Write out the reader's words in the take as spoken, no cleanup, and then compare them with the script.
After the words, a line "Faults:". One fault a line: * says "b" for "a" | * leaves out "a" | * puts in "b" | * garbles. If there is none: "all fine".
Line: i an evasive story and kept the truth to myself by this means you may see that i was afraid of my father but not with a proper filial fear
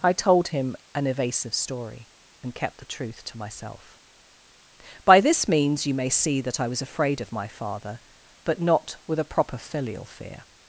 i told him an evasive story and kept the truth to myself by this means you may see that i was afraid of my father but not with a proper filial fear
Faults:
* puts in "told him"